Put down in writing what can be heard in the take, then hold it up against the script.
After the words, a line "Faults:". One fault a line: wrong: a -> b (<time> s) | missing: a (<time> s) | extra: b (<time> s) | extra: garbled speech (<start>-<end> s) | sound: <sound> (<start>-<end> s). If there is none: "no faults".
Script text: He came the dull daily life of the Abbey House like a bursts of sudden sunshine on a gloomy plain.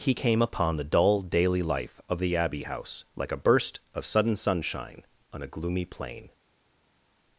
He came upon the dull daily life of the Abbey House like a burst of sudden sunshine on a gloomy plain.
Faults:
extra: upon (0.4 s)
wrong: bursts -> burst (3.4 s)